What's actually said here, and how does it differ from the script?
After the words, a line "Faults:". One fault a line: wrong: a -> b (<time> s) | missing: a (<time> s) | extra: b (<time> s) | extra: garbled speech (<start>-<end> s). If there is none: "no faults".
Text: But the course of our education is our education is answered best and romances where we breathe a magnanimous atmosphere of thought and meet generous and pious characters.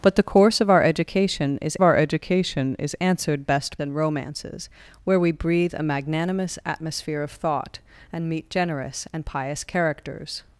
But the course of our education is our education is answered best and romances where we breathe a magnanimous atmosphere of thought and meet generous and pious characters.
Faults:
no faults